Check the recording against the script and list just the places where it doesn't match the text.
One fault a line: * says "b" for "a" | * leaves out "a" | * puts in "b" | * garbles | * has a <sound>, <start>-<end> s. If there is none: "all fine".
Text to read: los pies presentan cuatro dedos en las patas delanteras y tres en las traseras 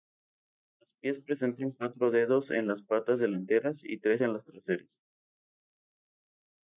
all fine